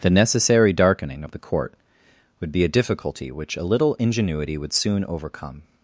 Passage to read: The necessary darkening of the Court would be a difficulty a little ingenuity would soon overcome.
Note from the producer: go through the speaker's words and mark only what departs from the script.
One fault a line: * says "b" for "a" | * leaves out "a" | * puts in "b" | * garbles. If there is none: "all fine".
* puts in "which"